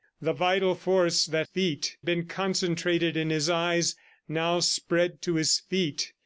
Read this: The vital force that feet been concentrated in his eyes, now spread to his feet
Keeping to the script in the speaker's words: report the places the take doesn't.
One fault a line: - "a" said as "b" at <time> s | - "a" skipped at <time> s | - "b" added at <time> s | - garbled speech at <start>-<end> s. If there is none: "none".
none